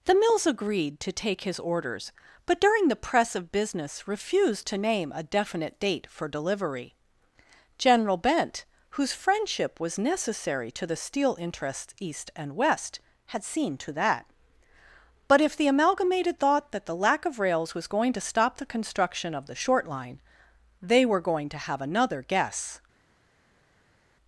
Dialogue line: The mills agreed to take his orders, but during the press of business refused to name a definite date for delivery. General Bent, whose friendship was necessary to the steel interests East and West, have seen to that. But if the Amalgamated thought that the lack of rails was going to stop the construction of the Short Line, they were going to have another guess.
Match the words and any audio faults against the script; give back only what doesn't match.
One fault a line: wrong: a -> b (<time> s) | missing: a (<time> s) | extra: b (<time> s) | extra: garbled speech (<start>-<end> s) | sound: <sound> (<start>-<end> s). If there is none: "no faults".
wrong: have -> had (13.3 s)